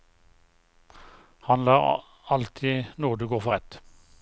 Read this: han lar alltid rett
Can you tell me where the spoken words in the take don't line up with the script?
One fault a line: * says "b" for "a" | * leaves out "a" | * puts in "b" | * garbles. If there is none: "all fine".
* puts in "nåde gå for"